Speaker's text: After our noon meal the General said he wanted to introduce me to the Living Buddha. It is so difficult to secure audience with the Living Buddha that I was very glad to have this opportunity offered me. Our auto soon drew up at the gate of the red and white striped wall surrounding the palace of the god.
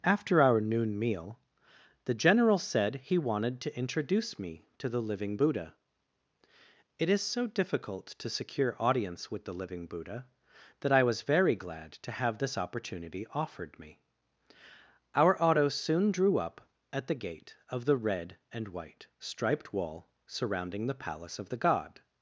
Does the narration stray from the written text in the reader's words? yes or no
no